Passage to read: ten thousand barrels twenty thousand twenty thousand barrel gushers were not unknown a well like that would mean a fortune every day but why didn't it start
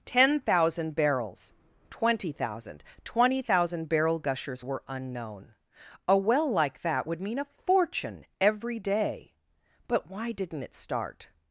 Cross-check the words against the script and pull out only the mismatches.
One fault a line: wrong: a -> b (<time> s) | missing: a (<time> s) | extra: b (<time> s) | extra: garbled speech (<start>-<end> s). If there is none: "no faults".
missing: not (4.8 s)